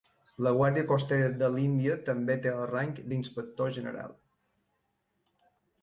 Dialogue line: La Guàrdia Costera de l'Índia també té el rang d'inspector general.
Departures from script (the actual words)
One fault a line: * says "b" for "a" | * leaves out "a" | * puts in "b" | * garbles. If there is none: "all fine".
all fine